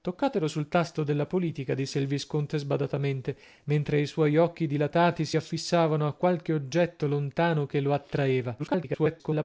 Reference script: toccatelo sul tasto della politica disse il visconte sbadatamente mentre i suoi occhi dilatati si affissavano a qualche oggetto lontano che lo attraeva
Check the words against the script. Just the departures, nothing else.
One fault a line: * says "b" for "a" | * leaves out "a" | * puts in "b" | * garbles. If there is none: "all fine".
* garbles